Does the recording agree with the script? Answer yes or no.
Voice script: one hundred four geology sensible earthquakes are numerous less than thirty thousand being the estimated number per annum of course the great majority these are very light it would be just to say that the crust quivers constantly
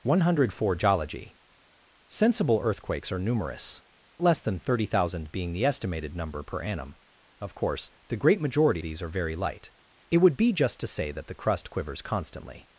yes